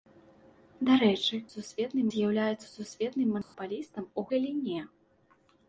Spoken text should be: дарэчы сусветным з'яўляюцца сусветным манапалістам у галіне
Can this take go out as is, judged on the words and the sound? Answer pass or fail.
fail